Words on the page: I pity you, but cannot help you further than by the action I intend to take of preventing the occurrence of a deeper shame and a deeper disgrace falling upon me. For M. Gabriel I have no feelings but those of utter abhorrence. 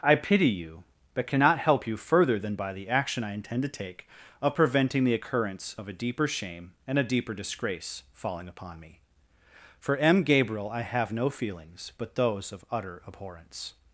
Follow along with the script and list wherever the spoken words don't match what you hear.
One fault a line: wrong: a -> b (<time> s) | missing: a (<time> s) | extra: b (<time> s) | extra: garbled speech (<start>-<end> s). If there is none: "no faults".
no faults